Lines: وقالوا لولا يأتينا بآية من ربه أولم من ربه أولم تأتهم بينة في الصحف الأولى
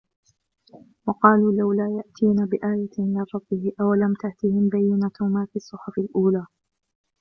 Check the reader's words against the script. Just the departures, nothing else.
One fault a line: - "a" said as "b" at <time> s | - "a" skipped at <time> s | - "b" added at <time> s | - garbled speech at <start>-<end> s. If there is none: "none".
- "من ربه أولم" skipped at 4.1 s
- "ما" added at 5.2 s